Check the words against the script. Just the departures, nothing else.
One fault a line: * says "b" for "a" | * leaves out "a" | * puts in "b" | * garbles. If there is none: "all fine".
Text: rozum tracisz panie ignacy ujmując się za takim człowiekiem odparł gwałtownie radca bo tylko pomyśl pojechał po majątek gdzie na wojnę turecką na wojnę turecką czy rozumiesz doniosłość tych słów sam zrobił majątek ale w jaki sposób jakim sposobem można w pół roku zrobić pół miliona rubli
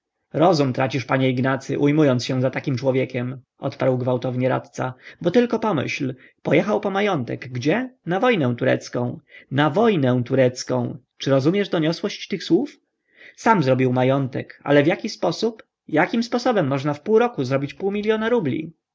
all fine